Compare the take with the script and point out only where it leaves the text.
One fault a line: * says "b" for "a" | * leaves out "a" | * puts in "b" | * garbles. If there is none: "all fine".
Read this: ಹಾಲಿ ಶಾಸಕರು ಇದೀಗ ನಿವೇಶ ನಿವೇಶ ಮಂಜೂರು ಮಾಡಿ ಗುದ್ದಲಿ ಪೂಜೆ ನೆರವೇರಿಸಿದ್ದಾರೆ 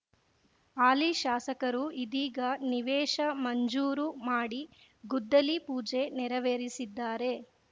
* leaves out "ನಿವೇಶ"